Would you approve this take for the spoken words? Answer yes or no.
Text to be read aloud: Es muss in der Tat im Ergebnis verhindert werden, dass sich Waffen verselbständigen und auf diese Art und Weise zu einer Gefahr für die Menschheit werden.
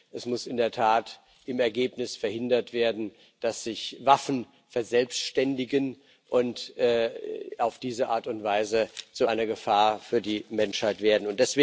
yes